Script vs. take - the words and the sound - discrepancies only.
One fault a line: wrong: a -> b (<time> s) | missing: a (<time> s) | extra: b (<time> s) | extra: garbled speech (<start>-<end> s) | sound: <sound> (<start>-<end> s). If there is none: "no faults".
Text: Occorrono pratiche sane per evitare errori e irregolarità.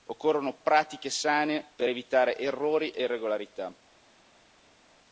no faults